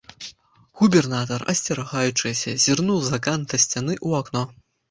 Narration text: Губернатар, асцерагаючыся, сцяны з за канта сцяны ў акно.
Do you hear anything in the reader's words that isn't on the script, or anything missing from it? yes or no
yes